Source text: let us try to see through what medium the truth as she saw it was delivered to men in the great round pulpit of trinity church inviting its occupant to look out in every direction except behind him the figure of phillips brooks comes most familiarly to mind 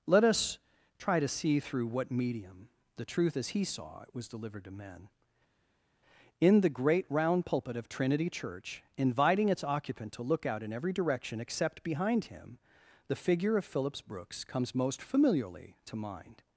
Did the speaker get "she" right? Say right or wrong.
wrong